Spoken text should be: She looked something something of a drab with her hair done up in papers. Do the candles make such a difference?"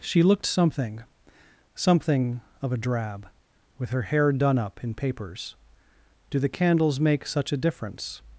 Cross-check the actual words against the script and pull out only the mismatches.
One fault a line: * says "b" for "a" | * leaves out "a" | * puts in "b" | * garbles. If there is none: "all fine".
all fine